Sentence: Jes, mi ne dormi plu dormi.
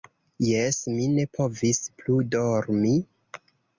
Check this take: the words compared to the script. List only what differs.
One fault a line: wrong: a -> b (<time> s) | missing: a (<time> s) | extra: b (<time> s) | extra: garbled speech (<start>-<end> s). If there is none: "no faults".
wrong: dormi -> povis (1.4 s)